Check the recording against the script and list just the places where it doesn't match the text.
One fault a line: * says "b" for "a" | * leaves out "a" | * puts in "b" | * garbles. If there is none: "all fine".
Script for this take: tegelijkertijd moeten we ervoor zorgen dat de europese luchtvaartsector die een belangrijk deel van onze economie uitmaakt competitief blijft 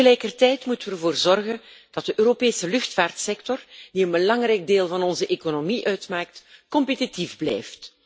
all fine